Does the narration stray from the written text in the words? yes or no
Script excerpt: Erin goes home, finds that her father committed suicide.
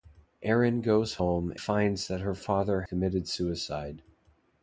no